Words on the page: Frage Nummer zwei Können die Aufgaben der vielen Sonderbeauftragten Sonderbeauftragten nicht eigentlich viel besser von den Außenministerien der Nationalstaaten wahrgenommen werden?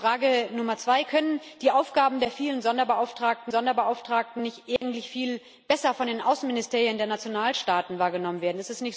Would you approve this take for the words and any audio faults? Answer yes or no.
no